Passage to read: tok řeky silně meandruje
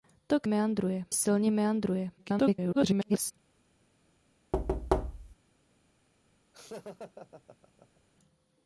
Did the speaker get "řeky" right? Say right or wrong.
wrong